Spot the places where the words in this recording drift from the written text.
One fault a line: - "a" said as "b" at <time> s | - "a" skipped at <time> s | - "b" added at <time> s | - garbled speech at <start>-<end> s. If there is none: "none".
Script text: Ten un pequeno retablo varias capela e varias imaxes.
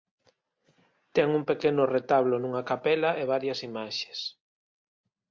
- "varias" said as "nunha" at 2.4 s